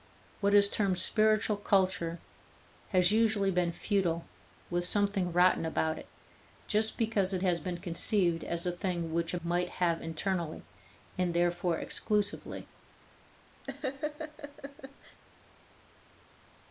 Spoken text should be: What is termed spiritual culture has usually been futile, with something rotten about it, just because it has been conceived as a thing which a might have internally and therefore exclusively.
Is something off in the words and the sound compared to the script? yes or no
yes